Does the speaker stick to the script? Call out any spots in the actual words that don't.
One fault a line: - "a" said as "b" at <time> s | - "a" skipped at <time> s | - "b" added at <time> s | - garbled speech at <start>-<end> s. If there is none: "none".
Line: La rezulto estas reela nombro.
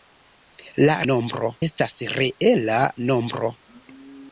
- "rezulto" said as "nombro" at 1.1 s